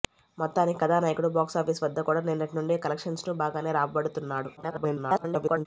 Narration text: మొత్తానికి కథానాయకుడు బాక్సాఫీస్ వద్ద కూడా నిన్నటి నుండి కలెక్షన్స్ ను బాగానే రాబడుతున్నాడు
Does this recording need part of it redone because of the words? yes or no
yes